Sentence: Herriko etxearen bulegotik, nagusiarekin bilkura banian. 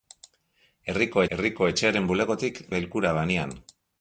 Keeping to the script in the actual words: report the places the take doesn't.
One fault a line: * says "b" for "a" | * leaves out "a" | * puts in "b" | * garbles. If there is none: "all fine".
* puts in "herriko"
* leaves out "nagusiarekin"